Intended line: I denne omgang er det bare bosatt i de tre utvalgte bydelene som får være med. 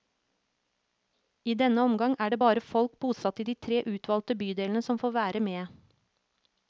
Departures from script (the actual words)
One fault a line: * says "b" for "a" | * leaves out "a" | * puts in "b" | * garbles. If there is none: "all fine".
* puts in "folk"